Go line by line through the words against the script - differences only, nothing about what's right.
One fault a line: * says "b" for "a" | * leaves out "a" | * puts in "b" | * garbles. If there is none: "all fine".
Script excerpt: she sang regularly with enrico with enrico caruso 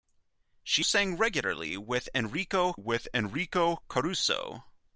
all fine